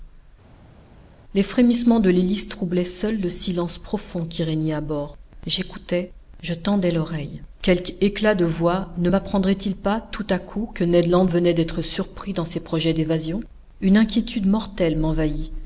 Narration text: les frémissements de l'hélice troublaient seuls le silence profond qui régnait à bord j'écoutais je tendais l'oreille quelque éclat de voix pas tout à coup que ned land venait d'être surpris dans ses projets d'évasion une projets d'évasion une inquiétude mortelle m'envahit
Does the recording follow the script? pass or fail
fail